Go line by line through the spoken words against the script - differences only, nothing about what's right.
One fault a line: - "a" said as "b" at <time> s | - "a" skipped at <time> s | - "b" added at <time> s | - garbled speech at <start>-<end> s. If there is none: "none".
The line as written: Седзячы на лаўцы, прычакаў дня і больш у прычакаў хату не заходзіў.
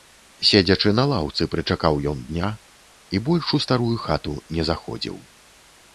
- "ён" added at 2.1 s
- "прычакаў" said as "старую" at 3.7 s